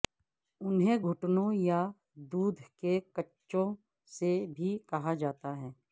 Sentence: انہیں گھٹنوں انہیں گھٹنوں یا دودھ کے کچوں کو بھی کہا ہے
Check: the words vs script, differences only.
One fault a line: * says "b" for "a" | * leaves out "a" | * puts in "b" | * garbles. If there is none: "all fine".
* leaves out "انہیں گھٹنوں"
* says "سے" for "کو"
* puts in "جاتا"